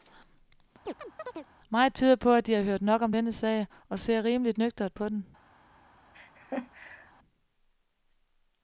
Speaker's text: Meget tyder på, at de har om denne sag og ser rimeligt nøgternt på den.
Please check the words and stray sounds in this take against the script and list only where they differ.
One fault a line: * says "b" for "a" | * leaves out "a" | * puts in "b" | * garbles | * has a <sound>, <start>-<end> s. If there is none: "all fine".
* has a chirp, 0.9-1.5 s
* puts in "hørt nok"
* has a laugh, 6.1-7.1 s